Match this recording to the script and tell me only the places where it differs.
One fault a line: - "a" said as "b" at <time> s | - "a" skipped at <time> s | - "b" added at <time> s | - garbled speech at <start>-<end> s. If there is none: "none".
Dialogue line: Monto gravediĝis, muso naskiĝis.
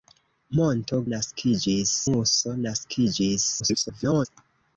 - "gravediĝis" said as "naskiĝis" at 1.1 s
- garbled speech at 3.6-4.3 s